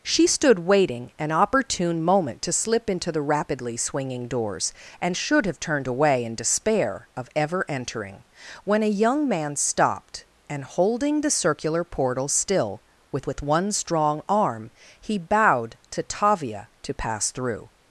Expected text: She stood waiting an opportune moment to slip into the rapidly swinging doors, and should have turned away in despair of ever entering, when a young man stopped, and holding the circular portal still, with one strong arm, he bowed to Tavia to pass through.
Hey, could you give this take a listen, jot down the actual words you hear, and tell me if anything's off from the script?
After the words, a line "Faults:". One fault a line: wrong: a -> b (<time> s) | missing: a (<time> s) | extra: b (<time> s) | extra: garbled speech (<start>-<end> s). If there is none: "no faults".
She stood waiting an opportune moment to slip into the rapidly swinging doors, and should have turned away in despair of ever entering, when a young man stopped, and holding the circular portal still, with with one strong arm, he bowed to Tavia to pass through.
Faults:
extra: with (13.3 s)